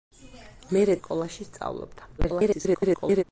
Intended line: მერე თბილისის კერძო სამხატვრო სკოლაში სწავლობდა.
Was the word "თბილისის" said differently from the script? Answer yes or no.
yes